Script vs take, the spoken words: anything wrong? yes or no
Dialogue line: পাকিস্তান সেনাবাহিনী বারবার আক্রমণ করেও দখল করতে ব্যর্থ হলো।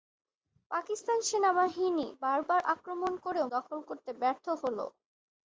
no